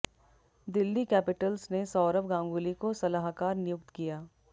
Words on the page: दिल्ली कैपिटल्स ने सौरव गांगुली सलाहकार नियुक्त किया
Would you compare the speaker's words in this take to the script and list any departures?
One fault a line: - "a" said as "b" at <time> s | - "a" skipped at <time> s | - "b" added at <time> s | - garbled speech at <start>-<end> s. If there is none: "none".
- "को" added at 2.8 s